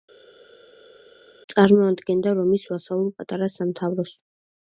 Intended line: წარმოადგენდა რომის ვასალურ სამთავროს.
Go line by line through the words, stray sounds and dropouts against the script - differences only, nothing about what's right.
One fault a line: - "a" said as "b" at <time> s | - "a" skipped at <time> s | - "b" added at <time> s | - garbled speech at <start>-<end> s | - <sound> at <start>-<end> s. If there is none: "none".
- "პატარა" added at 3.2 s